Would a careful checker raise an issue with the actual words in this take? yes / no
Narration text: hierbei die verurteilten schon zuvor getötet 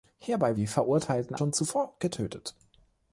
no